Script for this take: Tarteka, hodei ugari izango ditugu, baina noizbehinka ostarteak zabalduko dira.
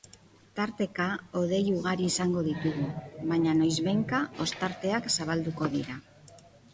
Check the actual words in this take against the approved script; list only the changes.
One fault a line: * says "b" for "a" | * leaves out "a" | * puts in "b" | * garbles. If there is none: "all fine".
all fine